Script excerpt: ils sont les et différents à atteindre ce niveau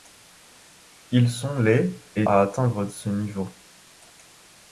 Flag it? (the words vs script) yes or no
yes